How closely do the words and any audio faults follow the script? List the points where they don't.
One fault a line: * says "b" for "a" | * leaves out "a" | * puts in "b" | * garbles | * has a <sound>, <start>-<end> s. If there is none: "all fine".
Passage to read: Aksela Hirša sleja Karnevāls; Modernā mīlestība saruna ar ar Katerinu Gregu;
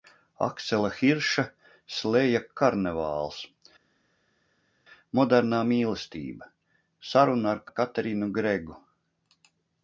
all fine